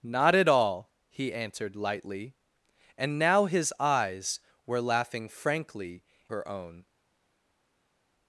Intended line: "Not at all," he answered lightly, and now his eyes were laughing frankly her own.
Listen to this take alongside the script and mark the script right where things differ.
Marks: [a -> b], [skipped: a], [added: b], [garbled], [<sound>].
"Not at all," he answered lightly, and now his eyes were laughing frankly her own.